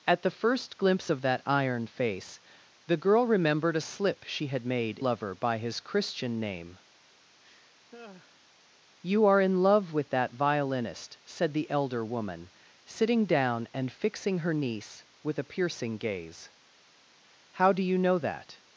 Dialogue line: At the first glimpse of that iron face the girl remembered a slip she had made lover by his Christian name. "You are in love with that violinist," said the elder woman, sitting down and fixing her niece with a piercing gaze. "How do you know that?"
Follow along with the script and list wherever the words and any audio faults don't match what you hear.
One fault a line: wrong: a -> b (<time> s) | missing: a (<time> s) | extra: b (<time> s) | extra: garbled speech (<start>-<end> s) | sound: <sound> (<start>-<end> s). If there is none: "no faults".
sound: laugh (7.4-8.4 s)